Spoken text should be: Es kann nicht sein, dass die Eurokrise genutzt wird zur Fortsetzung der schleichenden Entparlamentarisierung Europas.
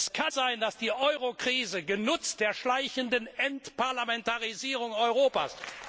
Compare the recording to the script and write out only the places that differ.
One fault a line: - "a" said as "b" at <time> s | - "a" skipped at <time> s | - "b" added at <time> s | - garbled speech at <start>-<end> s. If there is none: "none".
- "nicht" skipped at 0.3 s
- "wird zur Fortsetzung" skipped at 2.4 s